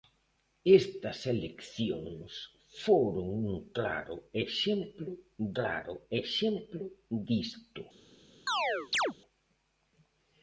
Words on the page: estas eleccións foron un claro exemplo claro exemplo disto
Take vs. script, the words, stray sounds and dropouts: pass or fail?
fail